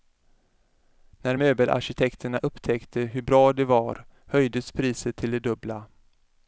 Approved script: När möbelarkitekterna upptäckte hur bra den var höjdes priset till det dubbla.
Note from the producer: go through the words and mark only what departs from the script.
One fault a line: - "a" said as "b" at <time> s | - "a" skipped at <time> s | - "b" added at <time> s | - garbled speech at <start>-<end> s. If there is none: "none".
- "den" said as "det" at 3.5 s